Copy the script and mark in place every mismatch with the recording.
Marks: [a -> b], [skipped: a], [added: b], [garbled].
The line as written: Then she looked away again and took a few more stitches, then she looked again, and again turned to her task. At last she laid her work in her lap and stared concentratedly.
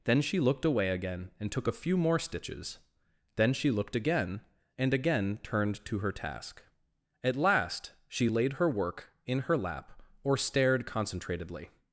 Then she looked away again and took a few more stitches, then she looked again, and again turned to her task. At last she laid her work in her lap [and -> or] stared concentratedly.